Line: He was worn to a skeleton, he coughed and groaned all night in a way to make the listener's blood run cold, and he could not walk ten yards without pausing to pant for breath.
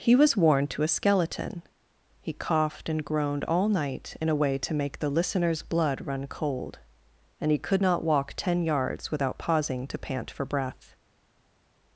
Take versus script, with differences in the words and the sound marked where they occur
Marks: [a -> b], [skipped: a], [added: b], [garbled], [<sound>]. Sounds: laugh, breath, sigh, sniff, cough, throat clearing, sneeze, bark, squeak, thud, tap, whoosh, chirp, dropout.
He was worn to a skeleton, he coughed and groaned all night in a way to make the listener's blood run cold, and he could not walk ten yards without pausing to pant for breath.